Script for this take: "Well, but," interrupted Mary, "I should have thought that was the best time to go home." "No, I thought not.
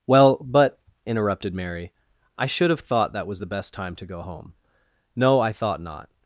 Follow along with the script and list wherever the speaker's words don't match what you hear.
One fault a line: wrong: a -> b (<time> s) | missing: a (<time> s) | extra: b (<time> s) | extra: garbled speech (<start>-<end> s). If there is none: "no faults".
no faults